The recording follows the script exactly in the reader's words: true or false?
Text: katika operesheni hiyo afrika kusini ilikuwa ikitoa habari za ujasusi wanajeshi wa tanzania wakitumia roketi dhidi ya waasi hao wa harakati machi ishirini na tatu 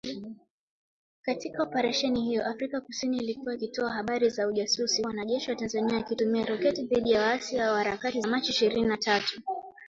true